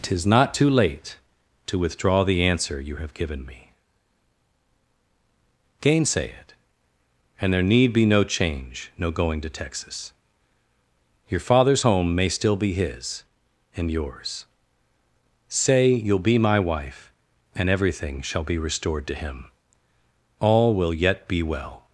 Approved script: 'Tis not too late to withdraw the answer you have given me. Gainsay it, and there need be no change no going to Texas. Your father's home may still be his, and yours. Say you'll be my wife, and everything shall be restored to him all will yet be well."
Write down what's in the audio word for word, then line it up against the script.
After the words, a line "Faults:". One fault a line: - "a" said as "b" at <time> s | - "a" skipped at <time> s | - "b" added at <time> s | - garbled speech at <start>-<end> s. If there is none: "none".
'Tis not too late to withdraw the answer you have given me. Gainsay it, and there need be no change no going to Texas. Your father's home may still be his, and yours. Say you'll be my wife, and everything shall be restored to him all will yet be well."
Faults:
none